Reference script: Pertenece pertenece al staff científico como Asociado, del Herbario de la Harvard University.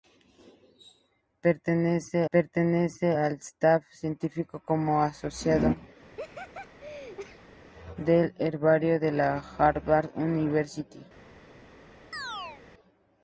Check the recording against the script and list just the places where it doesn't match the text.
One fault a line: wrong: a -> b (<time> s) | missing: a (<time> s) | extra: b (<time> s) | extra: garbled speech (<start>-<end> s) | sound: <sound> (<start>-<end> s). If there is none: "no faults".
sound: laugh (6.0-7.6 s)
sound: chirp (12.1-12.6 s)